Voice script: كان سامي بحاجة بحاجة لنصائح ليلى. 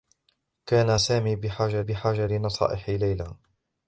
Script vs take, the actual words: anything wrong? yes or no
no